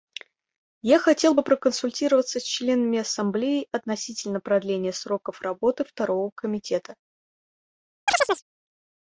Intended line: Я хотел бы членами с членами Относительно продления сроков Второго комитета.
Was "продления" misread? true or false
false